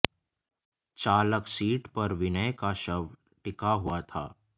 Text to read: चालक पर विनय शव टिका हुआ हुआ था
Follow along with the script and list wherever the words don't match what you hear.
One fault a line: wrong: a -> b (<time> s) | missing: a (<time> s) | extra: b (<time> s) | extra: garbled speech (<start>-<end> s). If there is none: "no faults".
extra: सीट (1.5 s)
extra: का (2.5 s)
missing: हुआ (4.0 s)